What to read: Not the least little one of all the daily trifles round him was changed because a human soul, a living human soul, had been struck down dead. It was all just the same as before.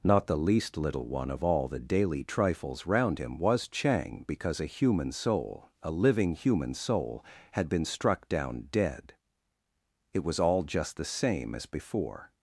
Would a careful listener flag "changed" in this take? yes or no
yes